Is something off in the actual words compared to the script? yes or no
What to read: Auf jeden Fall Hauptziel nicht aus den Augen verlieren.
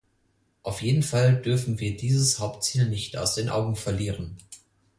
yes